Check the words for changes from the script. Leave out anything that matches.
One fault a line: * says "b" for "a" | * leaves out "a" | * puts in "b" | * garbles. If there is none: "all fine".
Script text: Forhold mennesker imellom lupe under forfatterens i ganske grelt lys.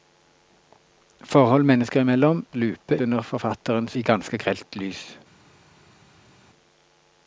all fine